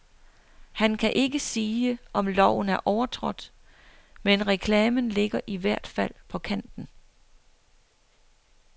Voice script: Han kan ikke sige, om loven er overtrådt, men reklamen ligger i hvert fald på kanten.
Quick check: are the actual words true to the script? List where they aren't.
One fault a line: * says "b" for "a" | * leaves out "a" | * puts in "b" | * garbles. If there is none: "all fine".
all fine